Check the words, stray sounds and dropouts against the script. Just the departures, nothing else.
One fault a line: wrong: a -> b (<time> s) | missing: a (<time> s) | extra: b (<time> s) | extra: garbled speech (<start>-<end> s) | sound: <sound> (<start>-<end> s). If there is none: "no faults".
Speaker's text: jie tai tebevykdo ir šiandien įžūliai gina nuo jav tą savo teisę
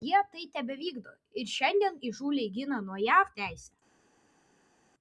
missing: tą savo (3.3 s)